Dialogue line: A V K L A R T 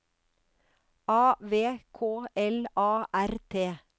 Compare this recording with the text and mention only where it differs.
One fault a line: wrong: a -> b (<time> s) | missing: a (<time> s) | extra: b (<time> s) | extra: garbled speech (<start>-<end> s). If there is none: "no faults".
no faults